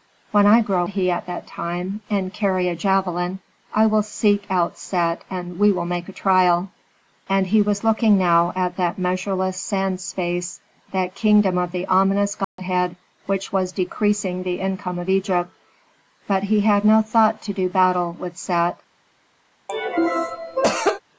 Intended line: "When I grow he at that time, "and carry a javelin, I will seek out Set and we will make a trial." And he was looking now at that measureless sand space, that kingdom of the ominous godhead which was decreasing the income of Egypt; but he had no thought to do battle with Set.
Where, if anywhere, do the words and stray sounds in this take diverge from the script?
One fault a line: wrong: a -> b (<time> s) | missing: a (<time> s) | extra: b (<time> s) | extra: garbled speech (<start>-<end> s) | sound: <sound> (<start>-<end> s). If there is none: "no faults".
sound: dropout (12.4-12.6 s)
sound: cough (19.7-21.0 s)